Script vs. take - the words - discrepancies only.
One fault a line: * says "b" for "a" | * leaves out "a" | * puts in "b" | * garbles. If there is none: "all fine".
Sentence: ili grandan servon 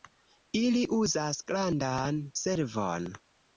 * puts in "uzas"